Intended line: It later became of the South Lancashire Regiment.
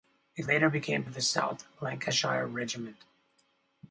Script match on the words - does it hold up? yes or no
yes